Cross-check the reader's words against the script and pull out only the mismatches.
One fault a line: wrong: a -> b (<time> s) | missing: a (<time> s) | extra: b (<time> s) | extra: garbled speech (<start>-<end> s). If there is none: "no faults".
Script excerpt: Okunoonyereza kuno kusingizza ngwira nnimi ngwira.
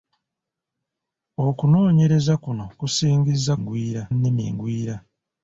no faults